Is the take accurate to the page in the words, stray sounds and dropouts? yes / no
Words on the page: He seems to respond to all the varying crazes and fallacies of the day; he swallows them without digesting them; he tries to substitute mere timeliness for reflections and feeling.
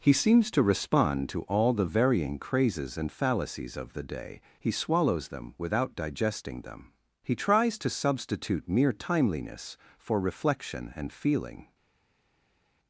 no